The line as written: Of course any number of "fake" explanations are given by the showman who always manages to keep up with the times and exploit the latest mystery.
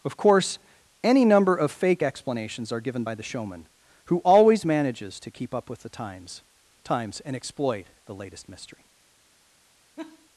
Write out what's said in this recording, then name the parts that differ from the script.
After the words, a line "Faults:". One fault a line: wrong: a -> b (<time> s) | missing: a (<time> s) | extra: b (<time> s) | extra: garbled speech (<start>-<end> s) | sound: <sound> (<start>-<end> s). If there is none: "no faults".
Of course any number of "fake" explanations are given by the showman who always manages to keep up with the times times and exploit the latest mystery.
Faults:
extra: times (6.8 s)
sound: laugh (10.0-10.3 s)